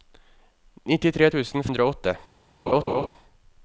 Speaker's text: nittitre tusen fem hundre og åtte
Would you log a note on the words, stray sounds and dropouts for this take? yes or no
yes